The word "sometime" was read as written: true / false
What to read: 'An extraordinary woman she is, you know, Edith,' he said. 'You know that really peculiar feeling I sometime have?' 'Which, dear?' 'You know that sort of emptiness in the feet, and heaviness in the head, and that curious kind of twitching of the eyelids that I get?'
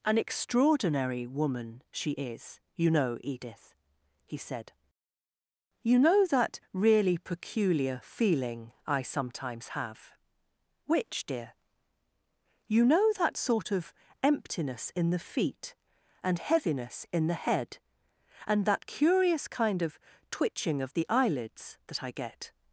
false